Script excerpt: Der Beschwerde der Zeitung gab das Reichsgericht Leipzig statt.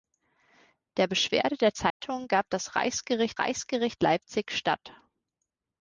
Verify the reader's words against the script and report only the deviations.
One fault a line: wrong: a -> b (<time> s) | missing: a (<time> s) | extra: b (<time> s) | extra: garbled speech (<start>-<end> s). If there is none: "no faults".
extra: Reichsgericht (3.4 s)